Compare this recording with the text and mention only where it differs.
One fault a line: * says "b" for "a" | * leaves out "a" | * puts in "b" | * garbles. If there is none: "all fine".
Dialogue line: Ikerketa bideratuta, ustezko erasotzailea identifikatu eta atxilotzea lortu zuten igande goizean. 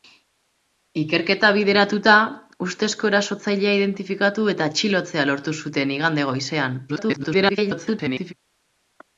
* garbles